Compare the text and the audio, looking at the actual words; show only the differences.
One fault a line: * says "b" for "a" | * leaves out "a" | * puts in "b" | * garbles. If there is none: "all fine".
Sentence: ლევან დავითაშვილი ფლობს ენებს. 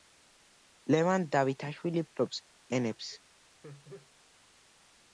all fine